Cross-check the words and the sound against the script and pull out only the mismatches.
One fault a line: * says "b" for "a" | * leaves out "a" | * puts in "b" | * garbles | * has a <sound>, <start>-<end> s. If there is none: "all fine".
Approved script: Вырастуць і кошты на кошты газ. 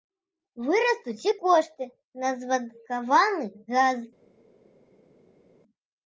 * says "звадкаваны" for "кошты"